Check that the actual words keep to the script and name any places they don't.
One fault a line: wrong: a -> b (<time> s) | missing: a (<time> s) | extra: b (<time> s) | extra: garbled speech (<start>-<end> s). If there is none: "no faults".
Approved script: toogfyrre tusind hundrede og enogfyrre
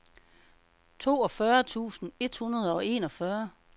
extra: et (2.2 s)